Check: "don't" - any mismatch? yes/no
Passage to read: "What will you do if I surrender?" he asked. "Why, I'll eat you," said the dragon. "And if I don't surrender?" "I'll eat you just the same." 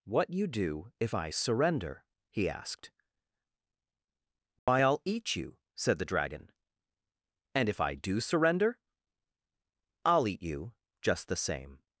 yes